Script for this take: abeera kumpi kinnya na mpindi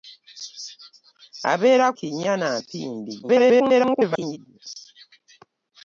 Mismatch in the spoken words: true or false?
true